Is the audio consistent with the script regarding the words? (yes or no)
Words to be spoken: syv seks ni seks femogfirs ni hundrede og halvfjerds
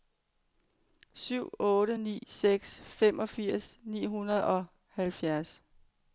no